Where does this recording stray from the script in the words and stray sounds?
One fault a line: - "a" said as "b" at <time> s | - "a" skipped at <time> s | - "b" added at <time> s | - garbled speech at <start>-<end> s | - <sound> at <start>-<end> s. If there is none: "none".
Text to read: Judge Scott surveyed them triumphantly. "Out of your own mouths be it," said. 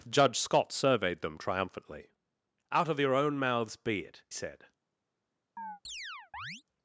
- chirp at 5.6-6.6 s